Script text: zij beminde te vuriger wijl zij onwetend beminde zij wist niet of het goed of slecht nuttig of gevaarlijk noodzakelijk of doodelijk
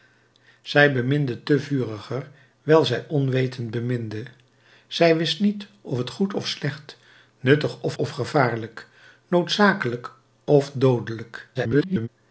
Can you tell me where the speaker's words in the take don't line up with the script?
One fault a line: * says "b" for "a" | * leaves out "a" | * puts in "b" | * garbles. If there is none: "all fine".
* puts in "of"
* garbles